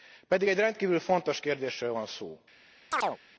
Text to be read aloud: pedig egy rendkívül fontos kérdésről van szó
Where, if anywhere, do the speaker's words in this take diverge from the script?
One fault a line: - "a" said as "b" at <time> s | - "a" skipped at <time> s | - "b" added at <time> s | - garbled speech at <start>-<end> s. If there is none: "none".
none